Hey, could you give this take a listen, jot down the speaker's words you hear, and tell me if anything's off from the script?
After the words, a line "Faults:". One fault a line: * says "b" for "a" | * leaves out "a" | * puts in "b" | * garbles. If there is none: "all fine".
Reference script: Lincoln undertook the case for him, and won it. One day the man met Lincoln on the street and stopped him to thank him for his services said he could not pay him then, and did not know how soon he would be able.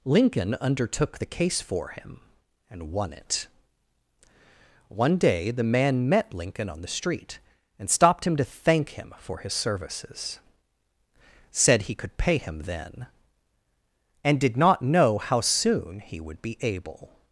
Lincoln undertook the case for him, and won it. One day the man met Lincoln on the street and stopped him to thank him for his services said he could pay him then, and did not know how soon he would be able.
Faults:
* leaves out "not"